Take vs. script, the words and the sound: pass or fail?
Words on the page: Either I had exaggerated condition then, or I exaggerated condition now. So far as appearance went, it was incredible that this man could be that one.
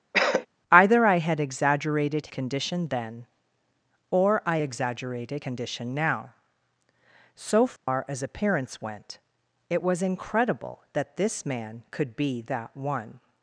fail